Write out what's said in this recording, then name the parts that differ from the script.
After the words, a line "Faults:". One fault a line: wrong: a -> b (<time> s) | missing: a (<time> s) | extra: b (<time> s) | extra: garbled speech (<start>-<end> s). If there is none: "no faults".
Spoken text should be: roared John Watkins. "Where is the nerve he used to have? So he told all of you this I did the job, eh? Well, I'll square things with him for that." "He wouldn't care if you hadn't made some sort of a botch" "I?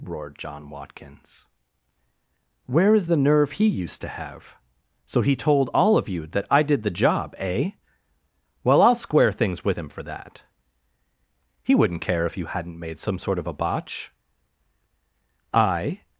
roared John Watkins. "Where is the nerve he used to have? So he told all of you that I did the job, eh? Well, I'll square things with him for that." "He wouldn't care if you hadn't made some sort of a botch" "I?
Faults:
wrong: this -> that (6.3 s)